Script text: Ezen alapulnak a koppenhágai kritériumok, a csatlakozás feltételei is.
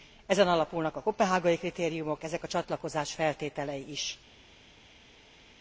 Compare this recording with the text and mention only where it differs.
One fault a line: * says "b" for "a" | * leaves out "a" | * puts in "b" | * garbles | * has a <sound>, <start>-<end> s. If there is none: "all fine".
* puts in "ezek"